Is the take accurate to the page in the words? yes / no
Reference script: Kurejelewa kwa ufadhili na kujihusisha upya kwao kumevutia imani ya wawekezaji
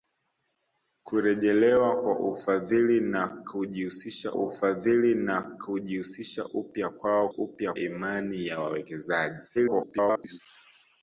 no